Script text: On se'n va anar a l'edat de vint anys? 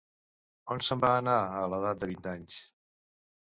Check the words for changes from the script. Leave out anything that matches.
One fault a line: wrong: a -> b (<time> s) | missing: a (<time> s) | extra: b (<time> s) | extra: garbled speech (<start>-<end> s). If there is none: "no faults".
no faults